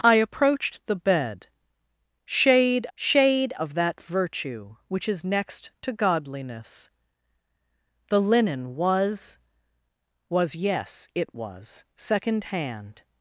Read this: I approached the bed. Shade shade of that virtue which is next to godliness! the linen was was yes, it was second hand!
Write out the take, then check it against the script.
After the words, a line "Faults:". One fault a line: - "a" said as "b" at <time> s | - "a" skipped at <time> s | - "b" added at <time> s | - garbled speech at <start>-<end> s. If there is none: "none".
I approached the bed. Shade shade of that virtue which is next to godliness! the linen was was yes, it was second hand!
Faults:
none